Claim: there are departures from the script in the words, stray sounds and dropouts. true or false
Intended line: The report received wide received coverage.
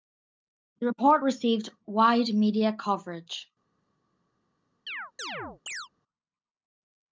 true